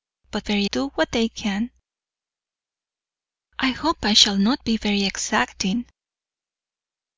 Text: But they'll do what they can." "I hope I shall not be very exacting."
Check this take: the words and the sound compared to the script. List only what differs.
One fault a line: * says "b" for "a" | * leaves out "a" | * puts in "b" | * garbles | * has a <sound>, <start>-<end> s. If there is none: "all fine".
* says "very" for "they'll"